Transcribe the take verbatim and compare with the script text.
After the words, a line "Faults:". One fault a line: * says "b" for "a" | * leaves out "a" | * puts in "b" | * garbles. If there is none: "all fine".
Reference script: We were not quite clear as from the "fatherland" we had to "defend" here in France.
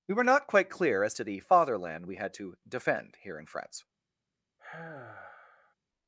We were not quite clear as to the "fatherland" we had to "defend" here in France.
Faults:
* says "to" for "from"